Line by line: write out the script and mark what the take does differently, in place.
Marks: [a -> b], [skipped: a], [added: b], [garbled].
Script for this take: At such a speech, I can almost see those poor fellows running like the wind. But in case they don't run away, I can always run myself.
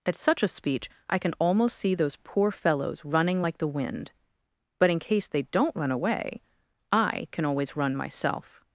At such a speech, I can almost see those poor fellows running like the wind. But in case they don't run away, I can always run myself.